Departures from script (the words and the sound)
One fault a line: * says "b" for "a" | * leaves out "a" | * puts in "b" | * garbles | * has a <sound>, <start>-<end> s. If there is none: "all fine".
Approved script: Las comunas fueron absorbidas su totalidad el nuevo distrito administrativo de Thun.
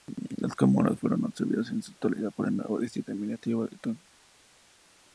* puts in "en"
* puts in "por"